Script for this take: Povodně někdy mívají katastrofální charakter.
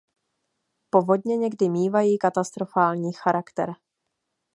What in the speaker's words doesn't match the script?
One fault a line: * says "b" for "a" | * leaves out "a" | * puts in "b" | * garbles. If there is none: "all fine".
all fine